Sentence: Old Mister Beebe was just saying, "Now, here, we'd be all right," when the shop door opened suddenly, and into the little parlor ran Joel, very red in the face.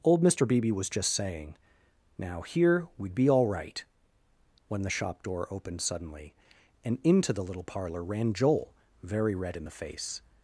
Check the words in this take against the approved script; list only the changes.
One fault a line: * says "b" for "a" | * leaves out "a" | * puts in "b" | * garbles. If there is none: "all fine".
all fine